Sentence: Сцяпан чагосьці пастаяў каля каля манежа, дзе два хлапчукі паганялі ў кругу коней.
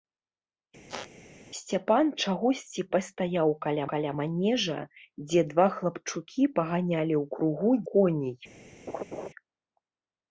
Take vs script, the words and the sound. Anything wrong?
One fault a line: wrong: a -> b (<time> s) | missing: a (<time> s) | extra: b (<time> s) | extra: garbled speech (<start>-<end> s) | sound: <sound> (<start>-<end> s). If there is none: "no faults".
sound: squeak (0.9-1.1 s)
sound: laugh (8.9-9.3 s)